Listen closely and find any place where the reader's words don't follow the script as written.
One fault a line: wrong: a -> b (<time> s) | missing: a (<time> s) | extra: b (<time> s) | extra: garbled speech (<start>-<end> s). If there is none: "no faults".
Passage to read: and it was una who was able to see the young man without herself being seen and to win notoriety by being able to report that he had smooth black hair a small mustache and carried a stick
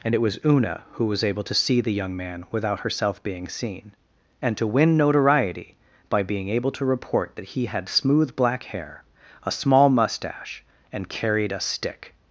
no faults